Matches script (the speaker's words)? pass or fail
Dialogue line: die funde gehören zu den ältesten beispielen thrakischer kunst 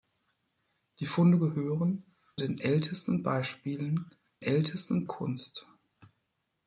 fail